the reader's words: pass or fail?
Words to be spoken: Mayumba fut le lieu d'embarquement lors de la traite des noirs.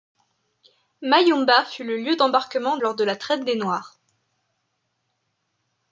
pass